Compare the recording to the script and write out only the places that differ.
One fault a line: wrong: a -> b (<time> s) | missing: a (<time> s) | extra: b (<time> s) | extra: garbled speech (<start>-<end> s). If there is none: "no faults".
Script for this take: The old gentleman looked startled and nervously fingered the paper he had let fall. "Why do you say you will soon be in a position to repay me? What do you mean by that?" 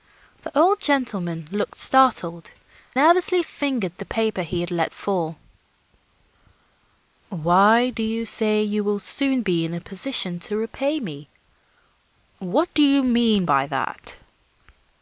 missing: and (2.5 s)